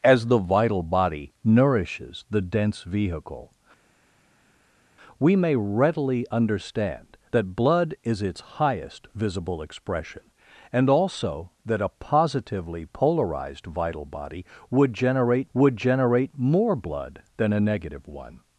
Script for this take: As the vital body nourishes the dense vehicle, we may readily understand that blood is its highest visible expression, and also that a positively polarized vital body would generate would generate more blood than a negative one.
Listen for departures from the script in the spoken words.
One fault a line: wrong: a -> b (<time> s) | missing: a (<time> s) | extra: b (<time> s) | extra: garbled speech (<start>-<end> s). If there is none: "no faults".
no faults